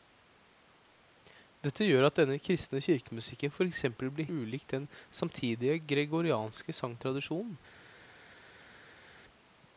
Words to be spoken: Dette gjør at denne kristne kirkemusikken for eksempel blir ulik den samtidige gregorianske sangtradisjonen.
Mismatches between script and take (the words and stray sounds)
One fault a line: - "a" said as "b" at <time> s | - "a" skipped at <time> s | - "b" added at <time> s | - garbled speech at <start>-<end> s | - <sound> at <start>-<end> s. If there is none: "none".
none